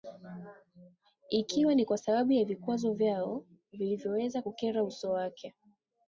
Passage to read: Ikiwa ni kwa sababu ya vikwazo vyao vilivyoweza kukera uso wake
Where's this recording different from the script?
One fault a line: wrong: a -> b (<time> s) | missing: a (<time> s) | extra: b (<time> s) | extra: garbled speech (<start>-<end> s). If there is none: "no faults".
no faults